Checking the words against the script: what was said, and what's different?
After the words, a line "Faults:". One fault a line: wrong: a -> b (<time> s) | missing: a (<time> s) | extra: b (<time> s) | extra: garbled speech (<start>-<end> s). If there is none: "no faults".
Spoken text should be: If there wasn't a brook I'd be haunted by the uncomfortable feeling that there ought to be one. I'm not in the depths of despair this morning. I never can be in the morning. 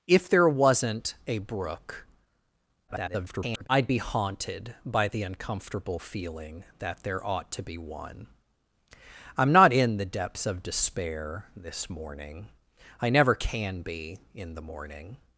If there wasn't a brook [garbled] I'd be haunted by the uncomfortable feeling that there ought to be one. I'm not in the depths of despair this morning. I never can be in the morning.
Faults:
extra: garbled speech (2.9-3.7 s)